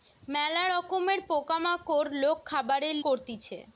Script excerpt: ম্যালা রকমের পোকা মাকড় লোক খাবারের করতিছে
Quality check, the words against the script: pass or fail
pass